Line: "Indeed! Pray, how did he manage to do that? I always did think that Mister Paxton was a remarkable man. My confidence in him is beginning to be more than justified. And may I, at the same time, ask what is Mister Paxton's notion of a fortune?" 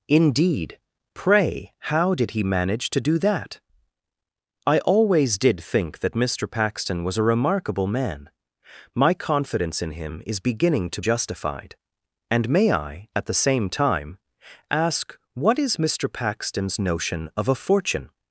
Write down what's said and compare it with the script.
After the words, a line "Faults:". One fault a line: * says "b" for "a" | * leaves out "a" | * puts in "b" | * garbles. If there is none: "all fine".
"Indeed! Pray, how did he manage to do that? I always did think that Mister Paxton was a remarkable man. My confidence in him is beginning to justified. And may I, at the same time, ask what is Mister Paxton's notion of a fortune?"
Faults:
* leaves out "be more than"